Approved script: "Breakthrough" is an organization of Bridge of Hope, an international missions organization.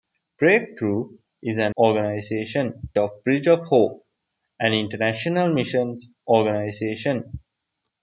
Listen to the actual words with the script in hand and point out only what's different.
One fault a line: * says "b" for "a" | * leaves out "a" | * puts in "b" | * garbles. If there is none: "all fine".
all fine